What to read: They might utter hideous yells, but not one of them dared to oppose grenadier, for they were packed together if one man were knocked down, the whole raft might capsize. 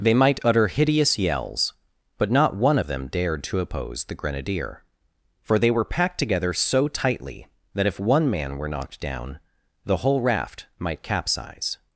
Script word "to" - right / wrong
right